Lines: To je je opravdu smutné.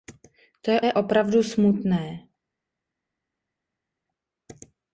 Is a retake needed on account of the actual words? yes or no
no